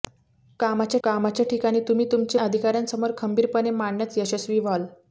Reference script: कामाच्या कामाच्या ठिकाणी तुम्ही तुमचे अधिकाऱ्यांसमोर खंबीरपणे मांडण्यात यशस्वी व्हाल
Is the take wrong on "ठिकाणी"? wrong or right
right